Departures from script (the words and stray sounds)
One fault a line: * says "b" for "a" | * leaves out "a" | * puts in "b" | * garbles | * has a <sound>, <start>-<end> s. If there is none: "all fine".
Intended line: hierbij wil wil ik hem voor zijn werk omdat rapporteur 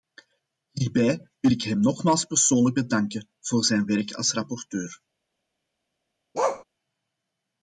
* leaves out "wil"
* puts in "nogmaals persoonlijk bedanken"
* says "als" for "omdat"
* has a bark, 6.3-6.6 s